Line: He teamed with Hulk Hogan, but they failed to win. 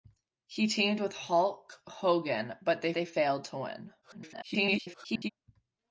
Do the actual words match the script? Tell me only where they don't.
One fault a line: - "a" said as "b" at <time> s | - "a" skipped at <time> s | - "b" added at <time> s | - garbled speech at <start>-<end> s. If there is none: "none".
- "they" added at 2.9 s
- garbled speech at 4.0-5.3 s